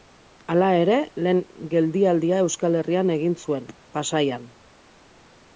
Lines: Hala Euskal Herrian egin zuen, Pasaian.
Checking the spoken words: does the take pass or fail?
fail